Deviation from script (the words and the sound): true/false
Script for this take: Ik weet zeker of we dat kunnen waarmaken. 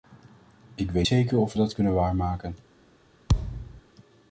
true